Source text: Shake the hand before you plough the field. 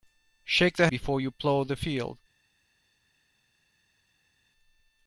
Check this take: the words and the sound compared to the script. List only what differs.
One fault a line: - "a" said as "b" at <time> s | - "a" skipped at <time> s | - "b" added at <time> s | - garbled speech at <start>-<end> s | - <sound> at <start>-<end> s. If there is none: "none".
- "hand" skipped at 0.9 s